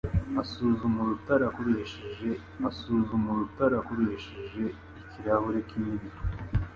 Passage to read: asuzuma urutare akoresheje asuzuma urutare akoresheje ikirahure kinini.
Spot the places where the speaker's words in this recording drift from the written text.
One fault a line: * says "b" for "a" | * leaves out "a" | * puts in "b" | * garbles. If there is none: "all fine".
all fine